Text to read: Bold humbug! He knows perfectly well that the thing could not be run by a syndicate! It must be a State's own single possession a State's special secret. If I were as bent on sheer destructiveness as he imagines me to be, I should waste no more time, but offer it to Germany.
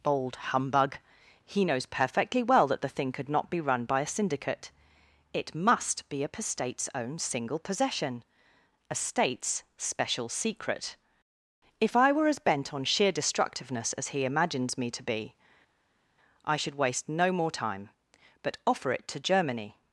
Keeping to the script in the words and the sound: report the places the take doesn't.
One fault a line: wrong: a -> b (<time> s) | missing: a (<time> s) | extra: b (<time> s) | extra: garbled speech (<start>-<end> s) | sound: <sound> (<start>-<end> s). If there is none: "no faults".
no faults